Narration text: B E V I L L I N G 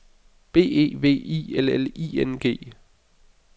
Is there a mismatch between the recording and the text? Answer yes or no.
no